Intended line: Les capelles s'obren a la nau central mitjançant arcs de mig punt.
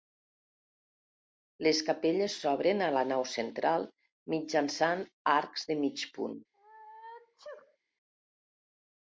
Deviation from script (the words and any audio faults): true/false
true